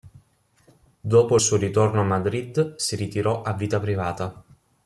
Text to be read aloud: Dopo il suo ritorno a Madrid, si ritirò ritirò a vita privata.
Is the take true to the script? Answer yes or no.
no